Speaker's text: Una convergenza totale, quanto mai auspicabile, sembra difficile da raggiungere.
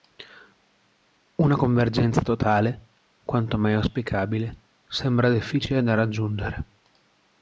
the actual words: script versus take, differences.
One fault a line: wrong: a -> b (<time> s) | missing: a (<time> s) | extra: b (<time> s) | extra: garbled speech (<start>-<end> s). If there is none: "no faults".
no faults